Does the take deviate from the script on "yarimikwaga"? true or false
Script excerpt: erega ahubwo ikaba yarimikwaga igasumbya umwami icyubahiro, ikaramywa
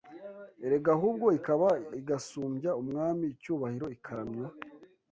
true